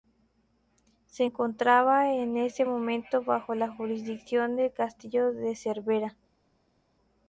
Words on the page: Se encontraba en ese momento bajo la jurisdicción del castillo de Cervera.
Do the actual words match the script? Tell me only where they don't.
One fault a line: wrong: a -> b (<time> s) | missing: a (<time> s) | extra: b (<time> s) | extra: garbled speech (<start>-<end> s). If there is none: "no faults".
no faults